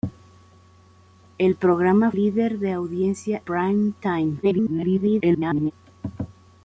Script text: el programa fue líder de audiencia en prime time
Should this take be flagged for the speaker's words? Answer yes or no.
yes